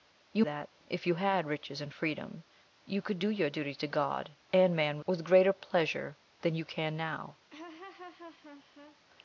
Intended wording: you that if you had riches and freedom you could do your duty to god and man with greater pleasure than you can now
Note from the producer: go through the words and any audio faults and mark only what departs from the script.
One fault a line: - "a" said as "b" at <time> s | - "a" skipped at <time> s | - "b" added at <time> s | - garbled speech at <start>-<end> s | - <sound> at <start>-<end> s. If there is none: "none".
- laugh at 7.5-9.0 s